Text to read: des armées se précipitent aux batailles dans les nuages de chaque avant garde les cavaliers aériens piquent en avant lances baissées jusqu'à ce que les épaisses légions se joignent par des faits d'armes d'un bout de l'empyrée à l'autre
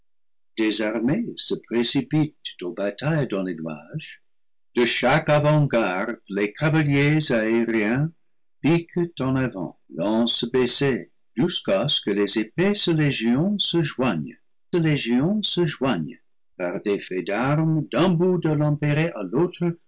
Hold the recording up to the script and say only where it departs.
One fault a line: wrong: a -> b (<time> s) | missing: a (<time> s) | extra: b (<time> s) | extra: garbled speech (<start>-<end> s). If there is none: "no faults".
extra: légions se joignent (14.7 s)